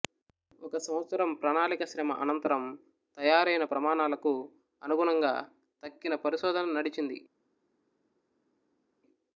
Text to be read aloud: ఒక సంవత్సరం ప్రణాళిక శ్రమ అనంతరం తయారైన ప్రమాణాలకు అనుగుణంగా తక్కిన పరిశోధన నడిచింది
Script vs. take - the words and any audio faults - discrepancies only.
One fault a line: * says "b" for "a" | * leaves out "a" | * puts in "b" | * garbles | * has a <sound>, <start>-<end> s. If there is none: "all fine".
all fine